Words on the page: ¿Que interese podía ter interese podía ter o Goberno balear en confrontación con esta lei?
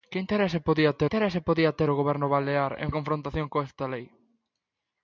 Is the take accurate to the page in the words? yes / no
yes